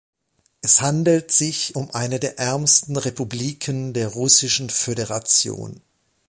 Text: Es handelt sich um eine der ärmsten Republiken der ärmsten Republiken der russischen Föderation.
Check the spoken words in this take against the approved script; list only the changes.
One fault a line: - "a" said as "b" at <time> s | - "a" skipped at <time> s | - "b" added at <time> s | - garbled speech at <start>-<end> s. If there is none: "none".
- "ärmsten Republiken der" skipped at 4.1 s